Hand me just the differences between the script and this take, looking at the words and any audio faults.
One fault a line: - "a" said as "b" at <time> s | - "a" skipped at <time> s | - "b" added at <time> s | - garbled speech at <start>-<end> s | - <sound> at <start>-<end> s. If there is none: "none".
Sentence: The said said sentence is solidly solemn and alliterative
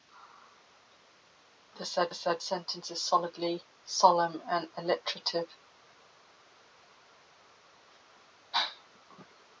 none